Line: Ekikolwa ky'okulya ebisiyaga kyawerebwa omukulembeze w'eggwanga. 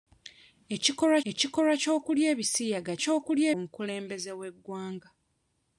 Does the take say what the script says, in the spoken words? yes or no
no